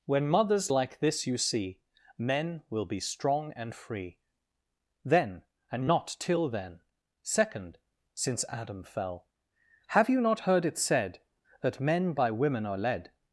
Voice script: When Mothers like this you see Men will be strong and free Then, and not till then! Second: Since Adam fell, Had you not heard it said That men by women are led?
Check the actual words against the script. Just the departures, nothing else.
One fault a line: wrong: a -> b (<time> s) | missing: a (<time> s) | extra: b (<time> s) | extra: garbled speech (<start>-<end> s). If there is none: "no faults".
wrong: Had -> Have (9.9 s)